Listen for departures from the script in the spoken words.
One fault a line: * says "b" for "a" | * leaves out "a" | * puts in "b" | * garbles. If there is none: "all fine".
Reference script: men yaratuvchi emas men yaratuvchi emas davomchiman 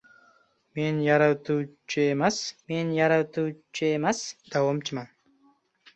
all fine